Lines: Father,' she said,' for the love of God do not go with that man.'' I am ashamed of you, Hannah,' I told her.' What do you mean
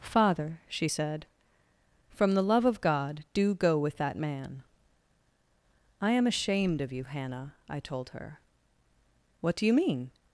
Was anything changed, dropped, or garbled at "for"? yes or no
yes